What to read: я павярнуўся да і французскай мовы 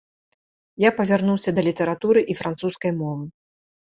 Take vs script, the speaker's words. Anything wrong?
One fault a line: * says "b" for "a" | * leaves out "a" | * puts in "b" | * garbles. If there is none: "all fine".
* puts in "літаратуры"